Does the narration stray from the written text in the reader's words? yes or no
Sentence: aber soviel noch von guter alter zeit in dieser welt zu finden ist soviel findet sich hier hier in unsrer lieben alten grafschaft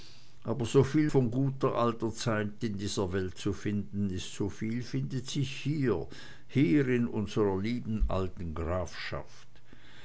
yes